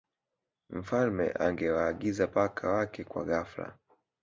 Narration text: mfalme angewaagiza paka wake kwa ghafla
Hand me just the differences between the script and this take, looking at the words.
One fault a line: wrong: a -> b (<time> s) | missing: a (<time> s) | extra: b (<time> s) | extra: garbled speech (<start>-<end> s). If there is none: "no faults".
no faults